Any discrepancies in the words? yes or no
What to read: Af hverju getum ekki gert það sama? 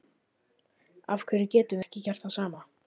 no